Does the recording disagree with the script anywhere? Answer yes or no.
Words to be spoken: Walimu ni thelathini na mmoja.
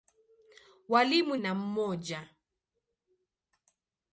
yes